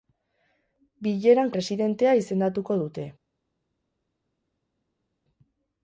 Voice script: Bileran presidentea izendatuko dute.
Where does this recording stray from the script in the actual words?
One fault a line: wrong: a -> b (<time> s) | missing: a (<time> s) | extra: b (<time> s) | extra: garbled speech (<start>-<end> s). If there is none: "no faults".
no faults